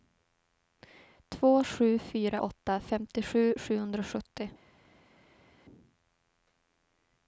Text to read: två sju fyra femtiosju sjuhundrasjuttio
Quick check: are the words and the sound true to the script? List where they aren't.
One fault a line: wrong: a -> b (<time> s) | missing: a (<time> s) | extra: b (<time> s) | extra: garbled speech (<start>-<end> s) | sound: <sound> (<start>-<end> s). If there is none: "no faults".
extra: åtta (2.4 s)